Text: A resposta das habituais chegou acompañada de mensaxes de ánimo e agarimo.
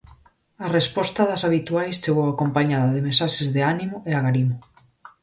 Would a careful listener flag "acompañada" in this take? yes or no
no